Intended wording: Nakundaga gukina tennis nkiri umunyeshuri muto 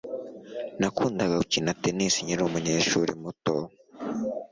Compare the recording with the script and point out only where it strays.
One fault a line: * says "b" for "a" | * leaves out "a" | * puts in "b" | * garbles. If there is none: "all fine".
all fine